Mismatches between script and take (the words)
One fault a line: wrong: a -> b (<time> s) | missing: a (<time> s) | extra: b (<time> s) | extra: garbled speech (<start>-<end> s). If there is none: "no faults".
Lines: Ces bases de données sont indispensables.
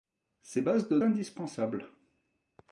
missing: données sont (1.0 s)